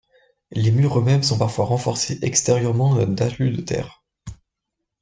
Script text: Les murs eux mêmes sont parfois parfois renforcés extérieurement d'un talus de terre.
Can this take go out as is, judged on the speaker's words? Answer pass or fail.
fail